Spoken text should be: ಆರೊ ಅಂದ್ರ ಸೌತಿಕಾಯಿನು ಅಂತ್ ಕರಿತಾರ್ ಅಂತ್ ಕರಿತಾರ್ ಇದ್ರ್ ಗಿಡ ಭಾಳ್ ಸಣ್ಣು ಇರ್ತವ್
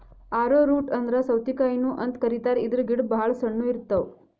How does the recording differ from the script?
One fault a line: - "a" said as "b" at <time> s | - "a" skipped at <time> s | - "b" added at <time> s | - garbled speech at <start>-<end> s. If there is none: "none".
- "ರೂಟ್" added at 0.7 s
- "ಅಂತ್ ಕರಿತಾರ್" skipped at 2.6 s